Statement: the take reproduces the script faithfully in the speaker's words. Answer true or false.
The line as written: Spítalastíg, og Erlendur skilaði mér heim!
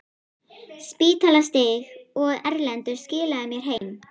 true